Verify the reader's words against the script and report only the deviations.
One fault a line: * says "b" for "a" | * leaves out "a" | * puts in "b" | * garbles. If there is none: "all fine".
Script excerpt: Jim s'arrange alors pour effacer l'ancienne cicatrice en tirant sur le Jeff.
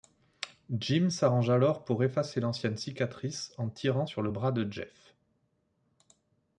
* puts in "bras de"